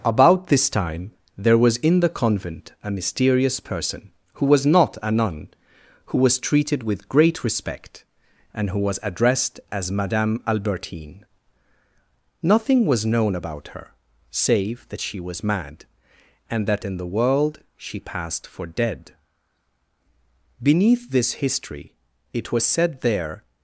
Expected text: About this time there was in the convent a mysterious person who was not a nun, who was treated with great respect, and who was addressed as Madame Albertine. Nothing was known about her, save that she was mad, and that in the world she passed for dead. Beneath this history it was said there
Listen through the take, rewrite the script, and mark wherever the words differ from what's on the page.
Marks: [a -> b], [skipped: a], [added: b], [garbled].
About this time there was in the convent a mysterious person who was not a nun, who was treated with great respect, and who was addressed as Madame Albertine. Nothing was known about her, save that she was mad, and that in the world she passed for dead. Beneath this history it was said there